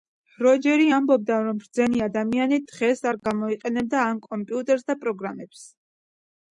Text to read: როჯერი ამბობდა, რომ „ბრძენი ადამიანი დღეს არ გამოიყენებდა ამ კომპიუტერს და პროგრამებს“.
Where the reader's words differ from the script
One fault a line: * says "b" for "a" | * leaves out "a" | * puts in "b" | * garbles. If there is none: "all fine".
all fine